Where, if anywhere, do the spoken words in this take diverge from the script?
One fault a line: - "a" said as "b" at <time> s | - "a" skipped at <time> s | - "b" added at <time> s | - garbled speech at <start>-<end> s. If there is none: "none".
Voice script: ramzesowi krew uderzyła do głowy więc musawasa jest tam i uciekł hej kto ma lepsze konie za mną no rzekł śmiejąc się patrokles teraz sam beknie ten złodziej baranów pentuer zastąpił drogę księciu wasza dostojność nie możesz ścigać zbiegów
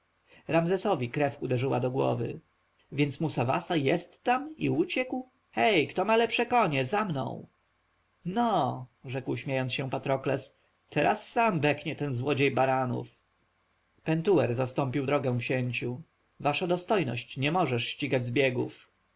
none